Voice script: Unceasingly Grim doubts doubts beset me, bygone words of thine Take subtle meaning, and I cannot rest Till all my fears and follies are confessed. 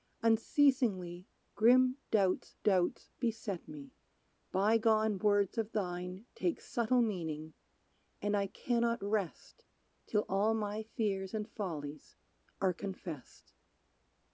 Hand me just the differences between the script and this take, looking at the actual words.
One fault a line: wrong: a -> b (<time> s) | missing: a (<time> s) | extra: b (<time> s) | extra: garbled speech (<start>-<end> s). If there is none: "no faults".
no faults